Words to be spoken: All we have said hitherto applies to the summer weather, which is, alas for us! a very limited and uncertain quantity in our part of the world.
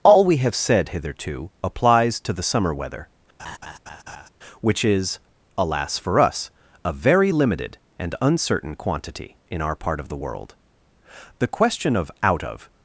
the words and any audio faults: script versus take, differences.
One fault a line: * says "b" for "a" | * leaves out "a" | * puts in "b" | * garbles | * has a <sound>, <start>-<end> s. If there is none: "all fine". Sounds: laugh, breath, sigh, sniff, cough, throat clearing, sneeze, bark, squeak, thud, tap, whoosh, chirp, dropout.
* has a laugh, 3.4-4.3 s
* puts in "The question of out of"